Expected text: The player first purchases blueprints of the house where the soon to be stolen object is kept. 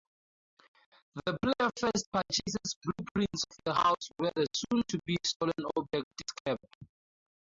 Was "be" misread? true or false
false